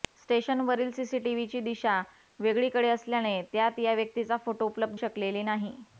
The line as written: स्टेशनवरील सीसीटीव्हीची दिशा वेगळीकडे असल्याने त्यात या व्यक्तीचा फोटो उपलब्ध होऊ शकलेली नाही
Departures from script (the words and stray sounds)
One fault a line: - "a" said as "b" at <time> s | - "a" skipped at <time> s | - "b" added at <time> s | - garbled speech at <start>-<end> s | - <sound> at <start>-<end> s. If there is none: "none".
- "होऊ" skipped at 5.0 s